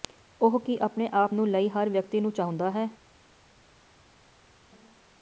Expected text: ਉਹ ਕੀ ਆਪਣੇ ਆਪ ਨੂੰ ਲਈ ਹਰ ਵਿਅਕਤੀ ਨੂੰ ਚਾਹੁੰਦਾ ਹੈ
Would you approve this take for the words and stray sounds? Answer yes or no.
yes